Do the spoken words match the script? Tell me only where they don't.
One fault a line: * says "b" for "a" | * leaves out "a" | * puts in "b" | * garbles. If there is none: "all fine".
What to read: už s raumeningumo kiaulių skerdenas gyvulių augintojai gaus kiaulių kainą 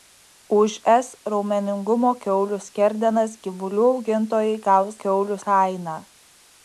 all fine